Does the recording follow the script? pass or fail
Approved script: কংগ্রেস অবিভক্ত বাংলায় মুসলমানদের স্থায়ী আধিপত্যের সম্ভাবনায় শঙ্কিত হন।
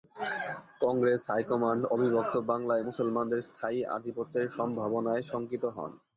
fail